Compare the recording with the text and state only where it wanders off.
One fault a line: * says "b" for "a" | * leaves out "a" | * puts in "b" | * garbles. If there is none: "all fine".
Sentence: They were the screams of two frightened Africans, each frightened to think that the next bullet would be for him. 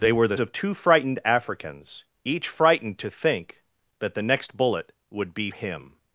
* leaves out "screams"
* leaves out "for"